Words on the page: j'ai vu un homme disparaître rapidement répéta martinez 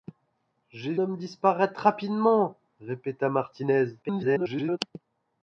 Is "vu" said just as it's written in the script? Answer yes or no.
no